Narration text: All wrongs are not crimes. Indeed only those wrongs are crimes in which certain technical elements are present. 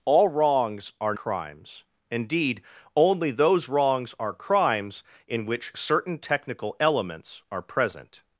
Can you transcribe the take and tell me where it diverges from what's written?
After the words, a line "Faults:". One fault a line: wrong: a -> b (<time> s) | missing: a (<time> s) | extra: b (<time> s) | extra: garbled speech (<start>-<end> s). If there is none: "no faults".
All wrongs are crimes. Indeed only those wrongs are crimes in which certain technical elements are present.
Faults:
missing: not (1.1 s)